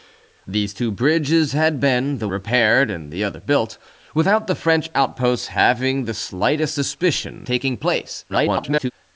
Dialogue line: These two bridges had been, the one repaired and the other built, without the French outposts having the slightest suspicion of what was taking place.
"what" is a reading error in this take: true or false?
true